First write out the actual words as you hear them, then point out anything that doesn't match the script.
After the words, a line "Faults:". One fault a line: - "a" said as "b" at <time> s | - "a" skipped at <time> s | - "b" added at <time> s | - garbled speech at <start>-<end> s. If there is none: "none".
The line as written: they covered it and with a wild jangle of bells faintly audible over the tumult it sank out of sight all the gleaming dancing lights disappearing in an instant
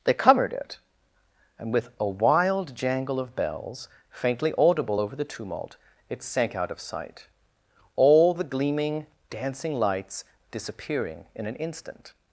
they covered it and with a wild jangle of bells faintly audible over the tumult it sank out of sight all the gleaming dancing lights disappearing in an instant
Faults:
none